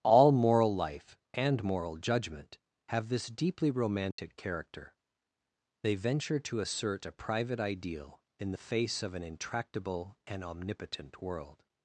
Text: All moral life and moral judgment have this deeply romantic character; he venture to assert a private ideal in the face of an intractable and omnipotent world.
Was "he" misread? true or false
true